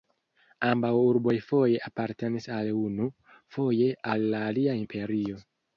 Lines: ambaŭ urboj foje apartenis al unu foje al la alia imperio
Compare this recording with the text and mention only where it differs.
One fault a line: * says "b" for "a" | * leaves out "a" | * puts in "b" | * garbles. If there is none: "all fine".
all fine